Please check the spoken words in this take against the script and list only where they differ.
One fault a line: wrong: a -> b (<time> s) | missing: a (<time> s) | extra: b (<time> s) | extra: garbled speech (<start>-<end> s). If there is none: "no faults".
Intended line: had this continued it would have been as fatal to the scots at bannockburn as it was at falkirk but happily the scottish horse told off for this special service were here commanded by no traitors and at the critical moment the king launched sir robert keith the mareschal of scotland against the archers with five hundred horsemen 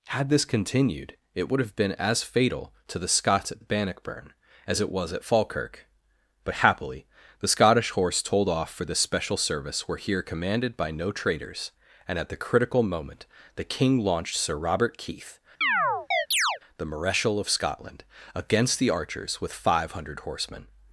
extra: at (3.6 s)